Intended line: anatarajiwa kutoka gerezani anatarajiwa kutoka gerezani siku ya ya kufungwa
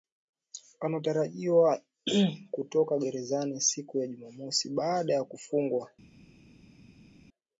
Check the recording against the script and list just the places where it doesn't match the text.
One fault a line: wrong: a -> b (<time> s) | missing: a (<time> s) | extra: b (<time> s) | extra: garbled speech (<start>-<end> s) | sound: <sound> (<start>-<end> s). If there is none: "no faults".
wrong: anatarajiwa kutoka gerezani siku ya -> siku ya jumamosi baada (3.6 s)